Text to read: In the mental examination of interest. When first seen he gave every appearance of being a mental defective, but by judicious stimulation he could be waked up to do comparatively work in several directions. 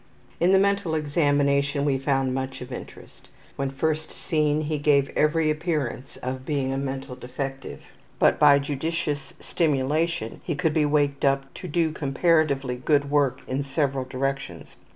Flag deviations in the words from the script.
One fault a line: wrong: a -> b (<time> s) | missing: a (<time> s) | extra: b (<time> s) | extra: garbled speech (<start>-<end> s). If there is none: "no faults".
extra: we found much (1.9 s)
extra: good (12.8 s)